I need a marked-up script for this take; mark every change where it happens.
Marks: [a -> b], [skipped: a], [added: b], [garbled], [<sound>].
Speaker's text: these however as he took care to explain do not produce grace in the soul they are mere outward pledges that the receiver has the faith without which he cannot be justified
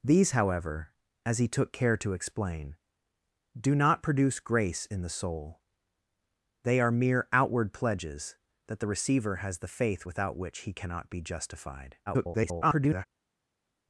these however as he took care to explain do not produce grace in the soul they are mere outward pledges that the receiver has the faith without which he cannot be justified [garbled]